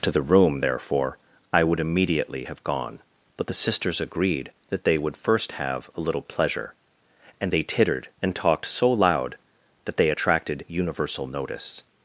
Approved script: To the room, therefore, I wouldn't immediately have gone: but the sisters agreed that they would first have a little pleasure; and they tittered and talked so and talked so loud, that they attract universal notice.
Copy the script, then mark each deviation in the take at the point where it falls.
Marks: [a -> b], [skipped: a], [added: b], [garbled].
To the room, therefore, I [wouldn't -> would] immediately have gone: but the sisters agreed that they would first have a little pleasure; and they tittered and talked so [skipped: and talked so] loud, that they [attract -> attracted] universal notice.